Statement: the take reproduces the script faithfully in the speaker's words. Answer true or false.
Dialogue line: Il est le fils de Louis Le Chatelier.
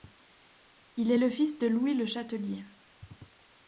true